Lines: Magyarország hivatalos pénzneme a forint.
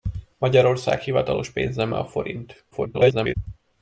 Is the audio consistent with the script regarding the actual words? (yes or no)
no